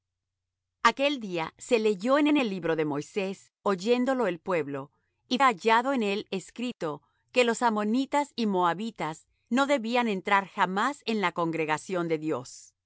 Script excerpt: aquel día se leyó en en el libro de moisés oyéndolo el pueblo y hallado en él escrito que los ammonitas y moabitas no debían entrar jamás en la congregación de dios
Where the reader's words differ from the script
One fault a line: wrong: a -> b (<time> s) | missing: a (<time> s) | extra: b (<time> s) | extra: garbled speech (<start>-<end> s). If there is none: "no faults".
no faults